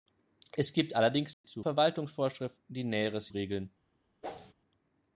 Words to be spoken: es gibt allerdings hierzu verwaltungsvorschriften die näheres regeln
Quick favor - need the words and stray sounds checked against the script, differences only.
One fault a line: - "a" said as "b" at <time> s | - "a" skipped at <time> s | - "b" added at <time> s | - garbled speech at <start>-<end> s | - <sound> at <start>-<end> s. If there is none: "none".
- dropout at 1.3-1.4 s
- whoosh at 4.2-4.5 s